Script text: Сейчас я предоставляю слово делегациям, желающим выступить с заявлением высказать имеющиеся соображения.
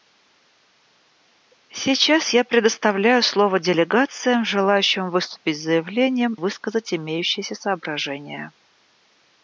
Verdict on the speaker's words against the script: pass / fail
pass